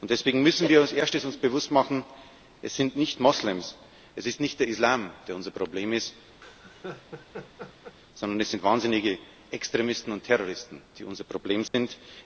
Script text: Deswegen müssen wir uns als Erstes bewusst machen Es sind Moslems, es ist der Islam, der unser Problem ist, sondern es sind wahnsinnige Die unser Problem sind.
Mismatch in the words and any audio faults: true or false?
true